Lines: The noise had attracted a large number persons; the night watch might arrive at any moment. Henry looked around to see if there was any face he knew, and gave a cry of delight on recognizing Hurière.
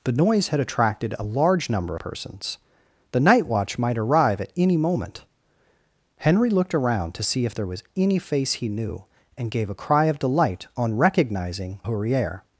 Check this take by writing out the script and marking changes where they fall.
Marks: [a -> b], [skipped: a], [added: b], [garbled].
The noise had attracted a large number persons; the night watch might arrive at any moment. Henry looked around to see if there was any face he knew, and gave a cry of delight on recognizing Hurière.